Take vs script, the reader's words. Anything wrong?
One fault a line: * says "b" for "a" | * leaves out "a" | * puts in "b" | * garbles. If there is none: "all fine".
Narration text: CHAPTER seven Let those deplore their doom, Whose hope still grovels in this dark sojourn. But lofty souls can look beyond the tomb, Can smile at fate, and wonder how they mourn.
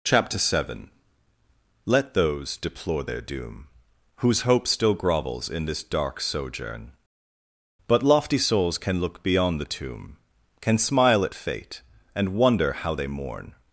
all fine